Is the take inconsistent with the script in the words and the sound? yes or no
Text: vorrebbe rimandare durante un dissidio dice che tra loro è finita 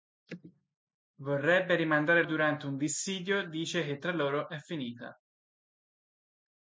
no